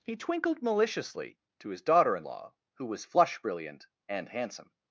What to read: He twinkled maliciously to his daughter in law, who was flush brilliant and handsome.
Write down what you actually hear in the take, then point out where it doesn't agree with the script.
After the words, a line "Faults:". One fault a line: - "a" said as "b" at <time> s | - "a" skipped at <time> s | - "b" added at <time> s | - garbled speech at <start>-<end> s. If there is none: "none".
He twinkled maliciously to his daughter in law, who was flush brilliant and handsome.
Faults:
none